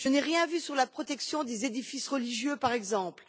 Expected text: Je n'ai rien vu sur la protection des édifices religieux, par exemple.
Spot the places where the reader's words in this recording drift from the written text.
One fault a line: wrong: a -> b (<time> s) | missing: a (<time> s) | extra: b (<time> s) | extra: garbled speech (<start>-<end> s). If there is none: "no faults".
no faults